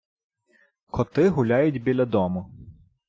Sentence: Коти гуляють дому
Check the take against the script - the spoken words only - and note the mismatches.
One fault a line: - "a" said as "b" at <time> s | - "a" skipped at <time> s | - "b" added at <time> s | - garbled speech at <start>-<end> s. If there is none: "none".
- "біля" added at 1.8 s